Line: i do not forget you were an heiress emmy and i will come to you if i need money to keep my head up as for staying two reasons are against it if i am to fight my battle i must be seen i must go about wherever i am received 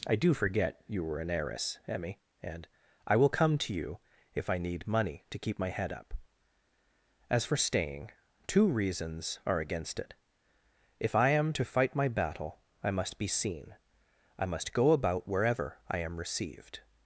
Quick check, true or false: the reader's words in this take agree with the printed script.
false